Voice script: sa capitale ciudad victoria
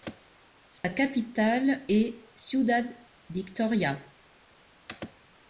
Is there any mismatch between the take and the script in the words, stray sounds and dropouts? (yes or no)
yes